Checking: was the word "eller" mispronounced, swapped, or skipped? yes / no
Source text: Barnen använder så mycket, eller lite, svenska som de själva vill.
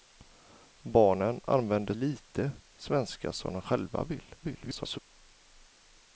yes